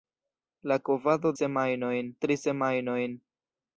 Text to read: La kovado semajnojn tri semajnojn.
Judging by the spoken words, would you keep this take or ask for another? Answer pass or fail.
pass